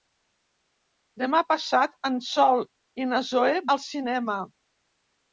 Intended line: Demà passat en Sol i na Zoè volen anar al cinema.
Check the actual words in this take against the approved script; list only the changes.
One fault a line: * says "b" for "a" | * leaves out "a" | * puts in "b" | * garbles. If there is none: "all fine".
* leaves out "volen anar"